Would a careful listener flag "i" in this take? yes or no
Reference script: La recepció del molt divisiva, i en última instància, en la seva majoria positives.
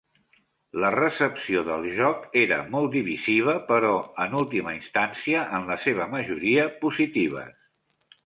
yes